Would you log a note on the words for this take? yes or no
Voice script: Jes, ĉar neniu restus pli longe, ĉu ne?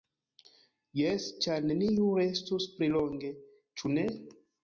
no